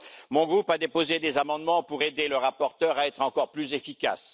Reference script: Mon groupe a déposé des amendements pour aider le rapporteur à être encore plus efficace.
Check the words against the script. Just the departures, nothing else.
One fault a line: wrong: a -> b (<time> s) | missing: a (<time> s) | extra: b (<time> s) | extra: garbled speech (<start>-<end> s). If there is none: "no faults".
no faults